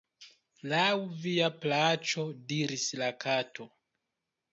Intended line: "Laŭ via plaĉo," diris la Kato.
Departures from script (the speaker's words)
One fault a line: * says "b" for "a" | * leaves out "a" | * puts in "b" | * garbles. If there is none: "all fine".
all fine